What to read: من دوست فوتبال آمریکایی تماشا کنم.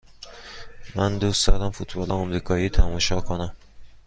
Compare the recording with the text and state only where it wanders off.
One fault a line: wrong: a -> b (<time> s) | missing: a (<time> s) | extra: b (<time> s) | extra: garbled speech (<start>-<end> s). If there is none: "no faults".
extra: دارم (1.5 s)